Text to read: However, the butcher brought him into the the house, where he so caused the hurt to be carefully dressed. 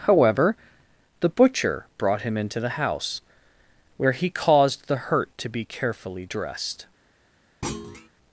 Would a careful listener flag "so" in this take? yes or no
yes